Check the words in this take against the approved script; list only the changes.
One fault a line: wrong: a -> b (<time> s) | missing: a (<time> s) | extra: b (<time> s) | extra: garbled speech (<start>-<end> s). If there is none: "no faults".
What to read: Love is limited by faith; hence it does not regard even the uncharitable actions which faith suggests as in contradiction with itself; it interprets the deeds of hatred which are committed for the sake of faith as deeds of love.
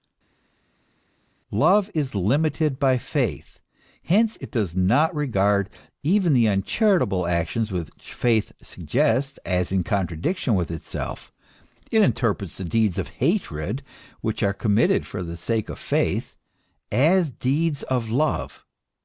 no faults